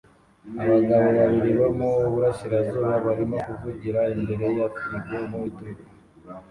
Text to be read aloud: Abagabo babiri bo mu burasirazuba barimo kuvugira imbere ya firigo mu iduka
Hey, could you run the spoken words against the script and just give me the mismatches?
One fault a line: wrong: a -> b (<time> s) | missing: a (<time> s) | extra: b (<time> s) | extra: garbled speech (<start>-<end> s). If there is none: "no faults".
no faults